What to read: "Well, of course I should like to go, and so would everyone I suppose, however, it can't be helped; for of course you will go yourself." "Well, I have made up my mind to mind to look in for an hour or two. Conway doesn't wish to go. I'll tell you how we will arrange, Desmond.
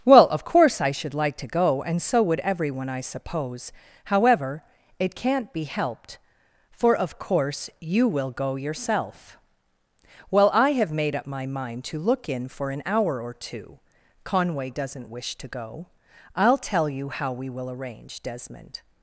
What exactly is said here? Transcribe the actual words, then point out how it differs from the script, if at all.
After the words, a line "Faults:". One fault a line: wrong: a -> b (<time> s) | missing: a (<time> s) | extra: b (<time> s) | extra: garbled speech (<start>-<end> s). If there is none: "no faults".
"Well, of course I should like to go, and so would everyone I suppose, however, it can't be helped; for of course you will go yourself." "Well, I have made up my mind to look in for an hour or two. Conway doesn't wish to go. I'll tell you how we will arrange, Desmond.
Faults:
missing: mind to (12.0 s)